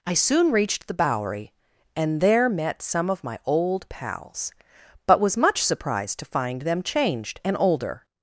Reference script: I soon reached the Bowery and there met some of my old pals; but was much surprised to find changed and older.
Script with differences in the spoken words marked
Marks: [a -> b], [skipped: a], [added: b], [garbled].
I soon reached the Bowery and there met some of my old pals; but was much surprised to find [added: them] changed and older.